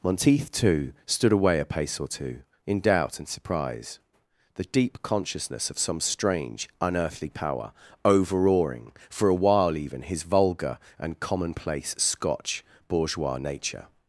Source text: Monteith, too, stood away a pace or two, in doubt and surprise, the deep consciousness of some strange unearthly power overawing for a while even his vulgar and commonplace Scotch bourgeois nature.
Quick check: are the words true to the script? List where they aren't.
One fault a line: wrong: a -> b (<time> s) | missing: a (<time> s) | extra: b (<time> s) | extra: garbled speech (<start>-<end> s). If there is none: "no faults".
no faults